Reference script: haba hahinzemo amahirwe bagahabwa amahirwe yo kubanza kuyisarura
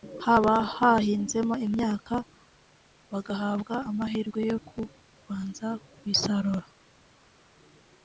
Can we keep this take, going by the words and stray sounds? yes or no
no